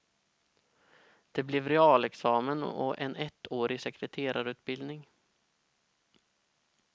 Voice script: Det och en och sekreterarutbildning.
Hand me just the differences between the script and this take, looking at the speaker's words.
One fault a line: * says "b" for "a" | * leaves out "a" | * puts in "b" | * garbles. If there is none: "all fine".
* puts in "blev realexamen"
* says "ettårig" for "och"